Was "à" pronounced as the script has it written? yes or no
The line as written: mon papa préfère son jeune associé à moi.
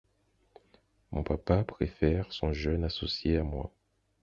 yes